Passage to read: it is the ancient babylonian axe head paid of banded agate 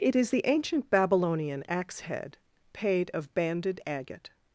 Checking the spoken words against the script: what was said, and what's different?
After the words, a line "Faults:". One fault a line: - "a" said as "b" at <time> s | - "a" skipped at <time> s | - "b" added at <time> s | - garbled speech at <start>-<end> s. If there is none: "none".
it is the ancient babylonian axe head paid of banded agate
Faults:
none